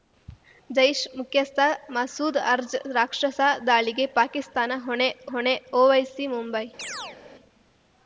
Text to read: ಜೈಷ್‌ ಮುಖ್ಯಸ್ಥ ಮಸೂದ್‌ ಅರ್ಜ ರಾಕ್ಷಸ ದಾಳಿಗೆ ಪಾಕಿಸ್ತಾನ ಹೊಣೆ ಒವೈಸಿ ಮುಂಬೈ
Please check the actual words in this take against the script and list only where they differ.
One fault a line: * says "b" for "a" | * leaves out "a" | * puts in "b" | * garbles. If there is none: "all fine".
* puts in "ಹೊಣೆ"